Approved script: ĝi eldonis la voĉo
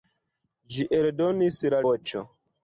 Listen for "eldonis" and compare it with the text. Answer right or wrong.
right